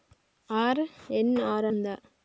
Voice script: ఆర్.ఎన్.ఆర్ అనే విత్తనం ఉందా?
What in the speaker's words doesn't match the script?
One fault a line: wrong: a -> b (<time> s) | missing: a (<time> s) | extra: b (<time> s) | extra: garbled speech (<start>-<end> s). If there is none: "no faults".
missing: అనే విత్తనం (1.7 s)